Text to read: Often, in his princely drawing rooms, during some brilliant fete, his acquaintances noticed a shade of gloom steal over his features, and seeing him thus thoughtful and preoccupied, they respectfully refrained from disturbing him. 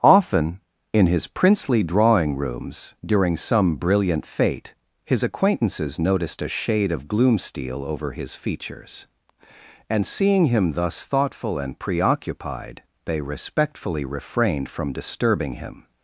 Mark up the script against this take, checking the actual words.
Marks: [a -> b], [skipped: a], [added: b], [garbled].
Often, in his princely drawing rooms, during some brilliant fete, his acquaintances noticed a shade of gloom steal over his features, and seeing him thus thoughtful and preoccupied, they respectfully refrained from disturbing him.